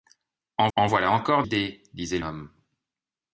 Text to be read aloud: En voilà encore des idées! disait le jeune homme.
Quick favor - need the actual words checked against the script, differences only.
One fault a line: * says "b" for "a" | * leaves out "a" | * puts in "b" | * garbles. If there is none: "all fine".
* puts in "en"
* leaves out "des"
* leaves out "jeune"